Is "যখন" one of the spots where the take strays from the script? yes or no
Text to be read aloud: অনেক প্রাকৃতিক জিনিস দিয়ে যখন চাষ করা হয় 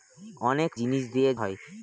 yes